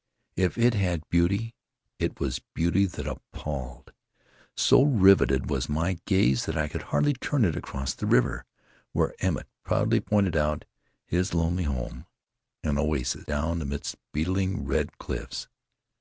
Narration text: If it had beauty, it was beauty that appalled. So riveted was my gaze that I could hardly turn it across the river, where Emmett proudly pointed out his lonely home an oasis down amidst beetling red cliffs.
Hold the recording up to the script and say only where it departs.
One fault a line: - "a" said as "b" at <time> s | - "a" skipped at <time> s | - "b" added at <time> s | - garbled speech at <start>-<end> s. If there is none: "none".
none